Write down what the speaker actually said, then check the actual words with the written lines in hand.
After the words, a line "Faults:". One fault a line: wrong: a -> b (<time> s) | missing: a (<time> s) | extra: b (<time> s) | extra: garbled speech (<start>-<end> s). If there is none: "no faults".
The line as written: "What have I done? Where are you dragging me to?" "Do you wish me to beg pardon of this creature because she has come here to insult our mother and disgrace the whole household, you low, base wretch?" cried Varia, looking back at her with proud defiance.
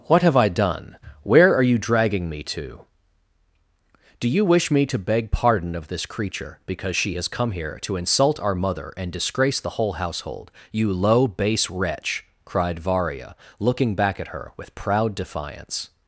"What have I done? Where are you dragging me to?" "Do you wish me to beg pardon of this creature because she has come here to insult our mother and disgrace the whole household, you low, base wretch?" cried Varia, looking back at her with proud defiance.
Faults:
no faults